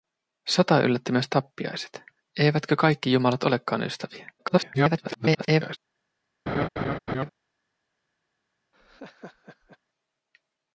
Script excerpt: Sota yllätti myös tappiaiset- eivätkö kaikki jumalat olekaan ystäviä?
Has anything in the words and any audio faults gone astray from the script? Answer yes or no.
yes